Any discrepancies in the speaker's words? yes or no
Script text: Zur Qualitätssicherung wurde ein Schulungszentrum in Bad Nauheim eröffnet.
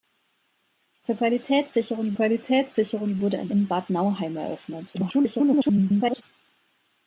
yes